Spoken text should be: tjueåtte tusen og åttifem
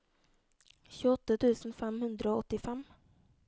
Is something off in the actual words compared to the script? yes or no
yes